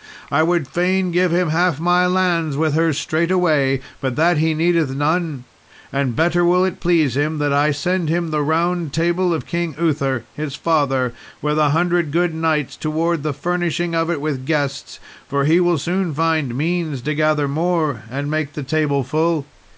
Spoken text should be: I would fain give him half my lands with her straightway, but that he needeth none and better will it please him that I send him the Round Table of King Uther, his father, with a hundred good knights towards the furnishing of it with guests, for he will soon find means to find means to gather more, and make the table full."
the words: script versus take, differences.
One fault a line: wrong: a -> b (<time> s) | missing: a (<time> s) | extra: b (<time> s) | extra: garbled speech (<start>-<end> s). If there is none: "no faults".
missing: find means to (17.1 s)